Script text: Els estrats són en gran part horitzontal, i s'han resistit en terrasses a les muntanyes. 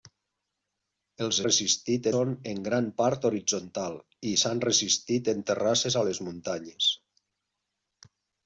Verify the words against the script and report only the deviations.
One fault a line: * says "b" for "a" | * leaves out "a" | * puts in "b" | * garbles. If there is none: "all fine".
* says "resistit" for "estrats"